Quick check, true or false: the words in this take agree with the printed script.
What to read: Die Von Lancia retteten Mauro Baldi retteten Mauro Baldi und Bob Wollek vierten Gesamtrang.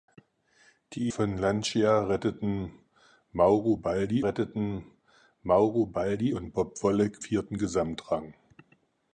true